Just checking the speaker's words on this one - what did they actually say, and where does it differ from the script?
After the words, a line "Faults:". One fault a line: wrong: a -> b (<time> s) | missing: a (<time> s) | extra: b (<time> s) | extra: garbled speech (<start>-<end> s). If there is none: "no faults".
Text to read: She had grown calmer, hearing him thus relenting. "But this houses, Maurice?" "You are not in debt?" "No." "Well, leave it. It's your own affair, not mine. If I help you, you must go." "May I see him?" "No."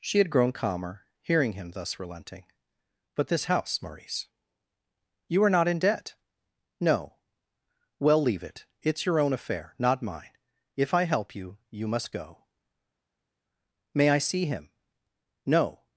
She had grown calmer, hearing him thus relenting. "But this house, Maurice?" "You are not in debt?" "No." "Well, leave it. It's your own affair, not mine. If I help you, you must go." "May I see him?" "No."
Faults:
wrong: houses -> house (3.4 s)